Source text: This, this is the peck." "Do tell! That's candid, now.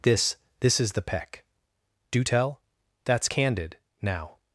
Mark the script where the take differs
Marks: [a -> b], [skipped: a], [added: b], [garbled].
This, this is the peck." "Do tell! That's candid, now.